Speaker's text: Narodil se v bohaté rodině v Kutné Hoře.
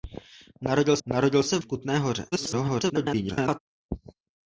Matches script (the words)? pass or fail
fail